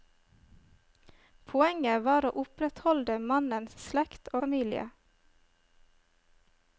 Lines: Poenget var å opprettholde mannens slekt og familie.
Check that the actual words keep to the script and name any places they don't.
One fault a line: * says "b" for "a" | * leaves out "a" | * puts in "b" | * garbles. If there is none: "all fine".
* leaves out "og"